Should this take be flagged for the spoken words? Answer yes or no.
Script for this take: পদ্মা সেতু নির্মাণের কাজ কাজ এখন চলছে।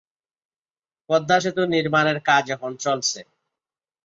yes